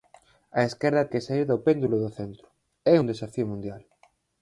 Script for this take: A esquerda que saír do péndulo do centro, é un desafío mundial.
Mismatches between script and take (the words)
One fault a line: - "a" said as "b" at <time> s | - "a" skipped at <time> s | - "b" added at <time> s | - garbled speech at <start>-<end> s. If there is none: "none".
none